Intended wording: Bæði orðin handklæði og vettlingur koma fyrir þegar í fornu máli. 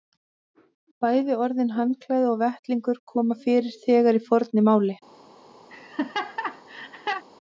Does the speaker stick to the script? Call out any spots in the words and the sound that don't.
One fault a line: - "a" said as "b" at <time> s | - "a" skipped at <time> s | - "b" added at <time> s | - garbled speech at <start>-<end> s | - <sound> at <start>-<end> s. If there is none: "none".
- laugh at 5.7-7.2 s